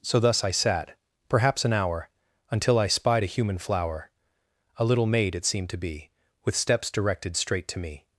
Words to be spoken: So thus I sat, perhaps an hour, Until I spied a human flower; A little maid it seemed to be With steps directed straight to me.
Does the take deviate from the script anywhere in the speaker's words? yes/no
no